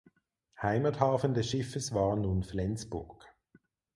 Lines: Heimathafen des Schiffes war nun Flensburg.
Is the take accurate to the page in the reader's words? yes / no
yes